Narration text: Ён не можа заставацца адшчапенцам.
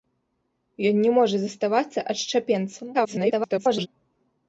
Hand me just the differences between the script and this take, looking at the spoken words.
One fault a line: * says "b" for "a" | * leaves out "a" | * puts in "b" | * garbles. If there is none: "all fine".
* garbles